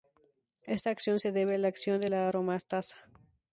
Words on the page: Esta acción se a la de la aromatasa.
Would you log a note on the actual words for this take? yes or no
yes